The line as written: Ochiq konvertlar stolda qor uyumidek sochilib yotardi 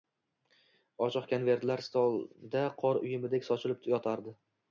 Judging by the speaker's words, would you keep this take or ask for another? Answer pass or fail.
pass